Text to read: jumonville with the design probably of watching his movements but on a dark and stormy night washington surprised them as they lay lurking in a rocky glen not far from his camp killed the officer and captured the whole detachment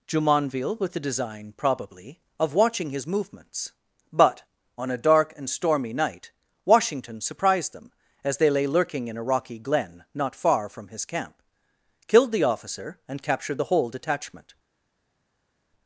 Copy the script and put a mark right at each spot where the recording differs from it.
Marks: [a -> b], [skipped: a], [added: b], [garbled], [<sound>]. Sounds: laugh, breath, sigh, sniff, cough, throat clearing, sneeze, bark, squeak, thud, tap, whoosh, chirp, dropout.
jumonville with the design probably of watching his movements but on a dark and stormy night washington surprised them as they lay lurking in a rocky glen not far from his camp killed the officer and captured the whole detachment